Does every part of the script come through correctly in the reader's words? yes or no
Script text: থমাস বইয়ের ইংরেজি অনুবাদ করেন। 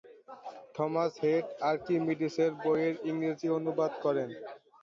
no